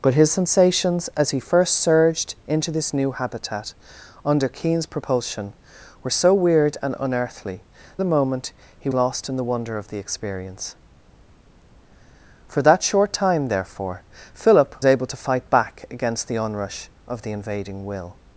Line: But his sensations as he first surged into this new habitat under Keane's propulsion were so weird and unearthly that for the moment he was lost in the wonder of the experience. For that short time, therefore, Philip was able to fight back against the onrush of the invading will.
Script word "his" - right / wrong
right